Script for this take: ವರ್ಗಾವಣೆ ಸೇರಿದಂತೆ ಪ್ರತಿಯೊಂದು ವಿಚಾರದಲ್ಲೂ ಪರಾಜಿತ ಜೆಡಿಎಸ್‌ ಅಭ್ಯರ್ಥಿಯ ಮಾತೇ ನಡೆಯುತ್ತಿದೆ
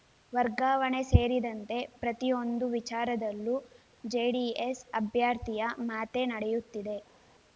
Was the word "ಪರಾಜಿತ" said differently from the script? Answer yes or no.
yes